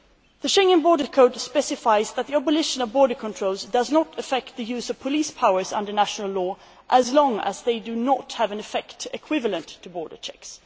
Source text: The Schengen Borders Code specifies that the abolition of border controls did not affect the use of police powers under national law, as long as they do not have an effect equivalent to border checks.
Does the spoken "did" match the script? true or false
false